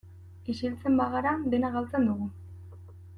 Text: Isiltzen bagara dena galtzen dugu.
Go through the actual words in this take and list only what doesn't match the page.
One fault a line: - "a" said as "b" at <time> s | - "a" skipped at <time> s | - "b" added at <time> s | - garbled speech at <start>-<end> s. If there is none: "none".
none